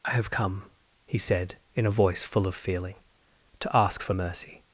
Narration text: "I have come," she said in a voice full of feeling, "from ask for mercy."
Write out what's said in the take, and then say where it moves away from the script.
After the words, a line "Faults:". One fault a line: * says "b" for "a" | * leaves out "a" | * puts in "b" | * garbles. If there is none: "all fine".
"I have come," he said in a voice full of feeling, "to ask for mercy."
Faults:
* says "he" for "she"
* says "to" for "from"